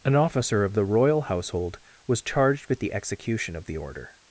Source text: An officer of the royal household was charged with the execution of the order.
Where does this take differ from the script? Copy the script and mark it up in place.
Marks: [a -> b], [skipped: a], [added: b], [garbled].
An officer of the royal household was charged with the execution of the order.